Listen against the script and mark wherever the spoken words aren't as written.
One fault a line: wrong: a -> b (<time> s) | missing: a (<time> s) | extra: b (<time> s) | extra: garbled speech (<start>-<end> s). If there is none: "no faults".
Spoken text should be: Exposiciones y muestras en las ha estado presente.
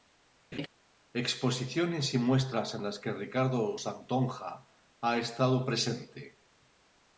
extra: que Ricardo Santonja (3.0 s)